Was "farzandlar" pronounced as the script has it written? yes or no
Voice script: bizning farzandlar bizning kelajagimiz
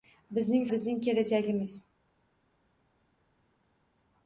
no